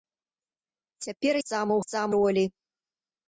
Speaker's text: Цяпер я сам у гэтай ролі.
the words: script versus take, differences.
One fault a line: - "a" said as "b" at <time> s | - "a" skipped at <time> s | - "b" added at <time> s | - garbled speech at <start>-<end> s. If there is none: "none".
- "я" skipped at 1.4 s
- "гэтай" said as "сам" at 1.8 s